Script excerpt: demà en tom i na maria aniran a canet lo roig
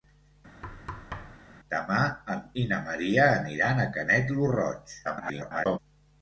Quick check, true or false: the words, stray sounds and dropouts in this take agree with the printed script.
false